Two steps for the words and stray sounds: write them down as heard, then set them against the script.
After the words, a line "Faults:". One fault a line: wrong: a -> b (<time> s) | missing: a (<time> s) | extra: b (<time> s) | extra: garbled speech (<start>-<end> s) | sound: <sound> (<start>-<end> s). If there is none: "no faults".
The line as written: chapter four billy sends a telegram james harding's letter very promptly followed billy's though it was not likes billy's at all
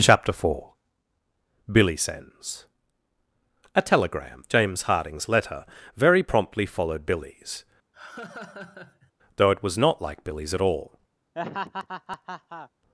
chapter four billy sends a telegram james harding's letter very promptly followed billy's though it was not like billy's at all
Faults:
sound: laugh (7.9-9.1 s)
wrong: likes -> like (10.0 s)
sound: laugh (11.3-12.7 s)